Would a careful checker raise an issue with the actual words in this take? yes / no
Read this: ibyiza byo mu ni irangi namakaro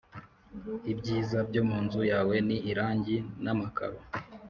yes